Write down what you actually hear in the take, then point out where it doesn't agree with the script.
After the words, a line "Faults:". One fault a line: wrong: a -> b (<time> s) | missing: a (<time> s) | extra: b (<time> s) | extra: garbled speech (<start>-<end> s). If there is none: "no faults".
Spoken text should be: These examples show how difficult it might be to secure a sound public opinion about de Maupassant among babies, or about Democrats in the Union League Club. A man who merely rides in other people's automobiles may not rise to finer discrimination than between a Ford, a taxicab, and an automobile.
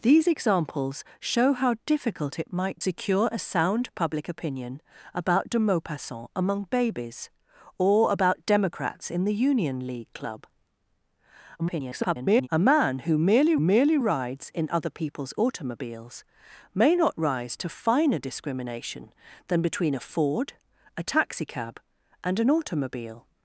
These examples show how difficult it might secure a sound public opinion about de Maupassant among babies, or about Democrats in the Union League Club. [garbled] A man who merely merely rides in other people's automobiles may not rise to finer discrimination than between a Ford, a taxicab, and an automobile.
Faults:
missing: be to (2.8 s)
extra: garbled speech (11.6-12.5 s)
extra: merely (13.6 s)